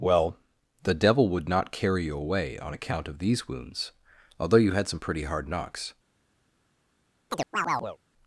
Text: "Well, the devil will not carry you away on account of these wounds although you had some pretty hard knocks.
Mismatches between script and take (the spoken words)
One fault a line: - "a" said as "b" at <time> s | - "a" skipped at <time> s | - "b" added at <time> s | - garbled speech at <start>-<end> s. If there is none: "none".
- "will" said as "would" at 1.3 s